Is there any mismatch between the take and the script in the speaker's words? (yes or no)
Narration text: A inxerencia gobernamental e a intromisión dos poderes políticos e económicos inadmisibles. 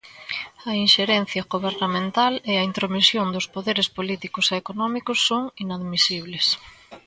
yes